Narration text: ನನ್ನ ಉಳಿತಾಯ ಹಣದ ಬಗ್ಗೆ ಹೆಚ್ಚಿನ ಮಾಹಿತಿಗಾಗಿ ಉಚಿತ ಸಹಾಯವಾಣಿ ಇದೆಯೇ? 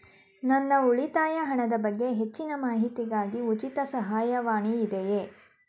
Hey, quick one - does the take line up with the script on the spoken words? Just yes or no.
yes